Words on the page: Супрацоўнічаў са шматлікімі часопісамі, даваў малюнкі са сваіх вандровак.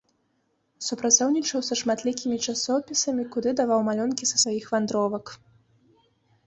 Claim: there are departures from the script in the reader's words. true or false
true